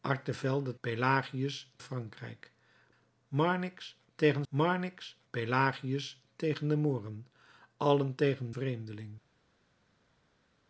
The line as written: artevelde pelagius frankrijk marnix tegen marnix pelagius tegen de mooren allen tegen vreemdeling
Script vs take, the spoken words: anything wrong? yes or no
no